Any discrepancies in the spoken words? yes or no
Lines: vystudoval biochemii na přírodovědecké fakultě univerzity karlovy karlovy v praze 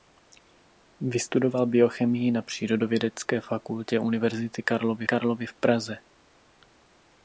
no